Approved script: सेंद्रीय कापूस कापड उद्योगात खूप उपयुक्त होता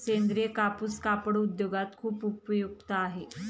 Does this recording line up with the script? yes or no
no